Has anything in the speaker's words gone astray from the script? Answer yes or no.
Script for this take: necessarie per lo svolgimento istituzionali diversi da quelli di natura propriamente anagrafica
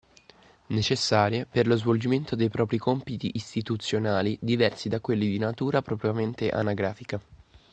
yes